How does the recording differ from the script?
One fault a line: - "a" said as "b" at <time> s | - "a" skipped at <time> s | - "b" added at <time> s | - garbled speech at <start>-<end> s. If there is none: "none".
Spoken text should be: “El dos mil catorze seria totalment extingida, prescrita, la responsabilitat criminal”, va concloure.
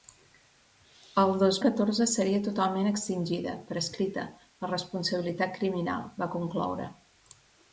- "mil" skipped at 1.6 s